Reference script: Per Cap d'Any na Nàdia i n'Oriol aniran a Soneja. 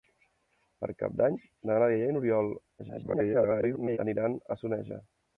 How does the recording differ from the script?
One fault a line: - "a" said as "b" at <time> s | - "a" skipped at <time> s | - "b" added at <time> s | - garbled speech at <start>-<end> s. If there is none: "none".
- garbled speech at 2.8-4.0 s